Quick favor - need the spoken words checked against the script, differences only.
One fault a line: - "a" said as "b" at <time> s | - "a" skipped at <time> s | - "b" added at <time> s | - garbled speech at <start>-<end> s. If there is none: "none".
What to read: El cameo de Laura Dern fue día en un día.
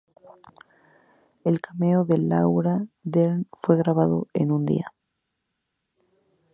- "día" said as "grabado" at 3.8 s